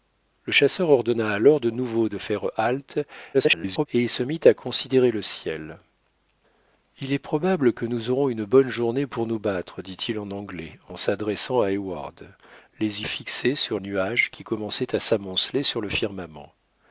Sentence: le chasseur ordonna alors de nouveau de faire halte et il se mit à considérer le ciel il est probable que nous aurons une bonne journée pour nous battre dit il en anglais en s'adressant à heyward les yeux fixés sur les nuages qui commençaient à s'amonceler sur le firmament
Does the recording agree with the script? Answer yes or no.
no